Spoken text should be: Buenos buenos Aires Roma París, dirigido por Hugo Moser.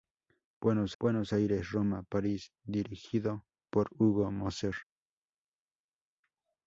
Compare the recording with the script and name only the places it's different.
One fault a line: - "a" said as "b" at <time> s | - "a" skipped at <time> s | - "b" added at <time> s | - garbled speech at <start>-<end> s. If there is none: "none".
none